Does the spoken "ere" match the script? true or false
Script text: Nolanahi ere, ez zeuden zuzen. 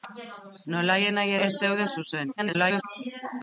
false